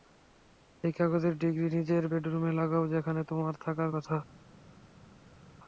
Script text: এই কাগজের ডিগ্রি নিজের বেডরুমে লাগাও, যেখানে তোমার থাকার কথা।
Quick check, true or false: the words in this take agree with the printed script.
true